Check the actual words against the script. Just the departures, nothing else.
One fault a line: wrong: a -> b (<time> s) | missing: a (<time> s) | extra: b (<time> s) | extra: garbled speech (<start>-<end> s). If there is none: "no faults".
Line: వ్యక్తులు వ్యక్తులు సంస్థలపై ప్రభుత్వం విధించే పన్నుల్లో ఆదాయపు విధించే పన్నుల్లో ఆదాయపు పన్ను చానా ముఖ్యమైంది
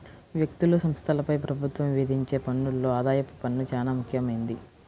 missing: వ్యక్తులు (0.8 s)
missing: విధించే పన్నుల్లో ఆదాయపు (3.3 s)